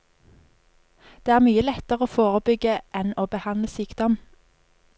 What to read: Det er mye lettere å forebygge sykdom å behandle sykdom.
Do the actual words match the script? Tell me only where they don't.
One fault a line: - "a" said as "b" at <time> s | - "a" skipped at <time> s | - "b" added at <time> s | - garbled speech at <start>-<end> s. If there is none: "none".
- "sykdom" said as "enn" at 3.0 s